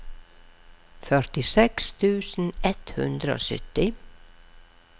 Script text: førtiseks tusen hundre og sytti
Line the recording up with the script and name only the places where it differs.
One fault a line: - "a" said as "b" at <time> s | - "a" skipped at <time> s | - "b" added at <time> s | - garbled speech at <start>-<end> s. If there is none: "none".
- "ett" added at 2.7 s